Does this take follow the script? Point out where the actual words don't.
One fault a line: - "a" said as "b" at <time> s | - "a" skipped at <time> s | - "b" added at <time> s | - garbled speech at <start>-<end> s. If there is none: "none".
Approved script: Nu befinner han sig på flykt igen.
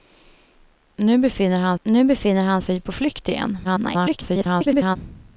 - "nu befinner han" added at 1.8 s
- garbled speech at 3.6-5.0 s